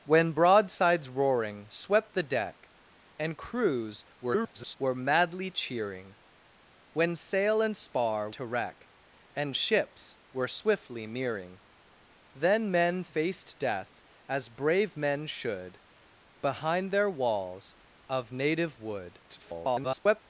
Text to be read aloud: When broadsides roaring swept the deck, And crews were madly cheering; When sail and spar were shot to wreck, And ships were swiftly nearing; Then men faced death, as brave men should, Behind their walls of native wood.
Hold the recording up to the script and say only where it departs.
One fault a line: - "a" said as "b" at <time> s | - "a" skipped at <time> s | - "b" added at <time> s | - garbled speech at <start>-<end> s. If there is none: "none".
- garbled speech at 4.2-4.8 s
- "were shot" skipped at 8.3 s
- garbled speech at 19.3-20.2 s